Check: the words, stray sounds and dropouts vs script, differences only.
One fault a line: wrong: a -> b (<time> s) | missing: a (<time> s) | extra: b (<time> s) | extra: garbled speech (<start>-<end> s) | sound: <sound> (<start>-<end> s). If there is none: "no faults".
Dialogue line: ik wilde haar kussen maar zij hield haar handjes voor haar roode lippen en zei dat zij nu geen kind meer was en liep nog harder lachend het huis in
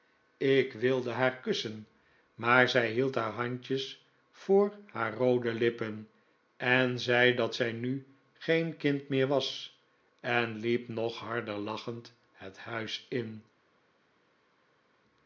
no faults